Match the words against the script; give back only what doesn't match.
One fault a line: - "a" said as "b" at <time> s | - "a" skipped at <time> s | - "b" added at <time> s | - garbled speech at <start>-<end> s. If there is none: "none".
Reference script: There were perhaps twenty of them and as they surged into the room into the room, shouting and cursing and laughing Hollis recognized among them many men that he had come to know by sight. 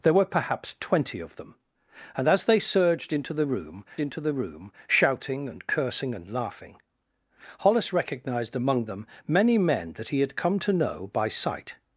none